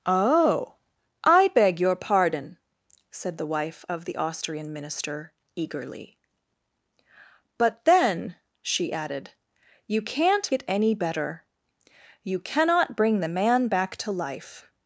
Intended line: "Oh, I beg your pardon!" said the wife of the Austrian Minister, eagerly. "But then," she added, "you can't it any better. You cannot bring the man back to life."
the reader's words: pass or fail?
pass